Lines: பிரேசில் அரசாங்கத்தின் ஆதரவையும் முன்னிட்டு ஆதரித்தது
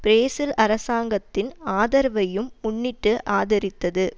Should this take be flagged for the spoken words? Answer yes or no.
no